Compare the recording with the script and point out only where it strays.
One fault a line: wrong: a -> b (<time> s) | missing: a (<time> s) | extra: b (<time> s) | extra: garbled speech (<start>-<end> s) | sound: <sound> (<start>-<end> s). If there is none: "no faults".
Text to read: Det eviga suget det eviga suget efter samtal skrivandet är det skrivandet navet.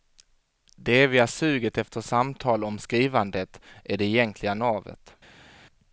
missing: det eviga suget (1.8 s)
extra: om (2.6 s)
wrong: skrivandet -> egentliga (4.0 s)